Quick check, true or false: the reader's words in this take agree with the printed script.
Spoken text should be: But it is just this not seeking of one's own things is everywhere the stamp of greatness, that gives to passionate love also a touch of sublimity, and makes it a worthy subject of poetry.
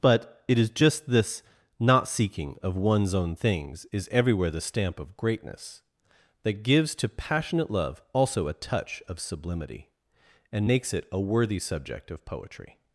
true